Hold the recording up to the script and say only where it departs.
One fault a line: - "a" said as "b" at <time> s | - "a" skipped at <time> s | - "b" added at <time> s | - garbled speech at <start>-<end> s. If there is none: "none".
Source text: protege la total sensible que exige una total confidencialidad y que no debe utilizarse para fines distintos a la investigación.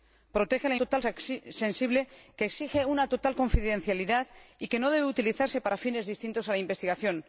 none